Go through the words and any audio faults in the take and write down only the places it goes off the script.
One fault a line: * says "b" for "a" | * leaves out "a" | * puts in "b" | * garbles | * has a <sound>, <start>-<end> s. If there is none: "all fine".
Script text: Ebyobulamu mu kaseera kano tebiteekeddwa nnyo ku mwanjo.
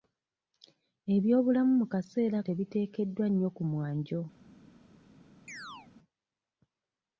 * leaves out "kano"
* has a chirp, 5.5-5.9 s